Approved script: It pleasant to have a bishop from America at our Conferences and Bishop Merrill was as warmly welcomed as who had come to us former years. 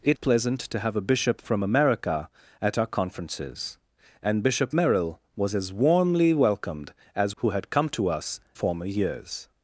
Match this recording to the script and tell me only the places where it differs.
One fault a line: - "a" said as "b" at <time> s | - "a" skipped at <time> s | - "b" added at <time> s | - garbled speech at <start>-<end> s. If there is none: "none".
none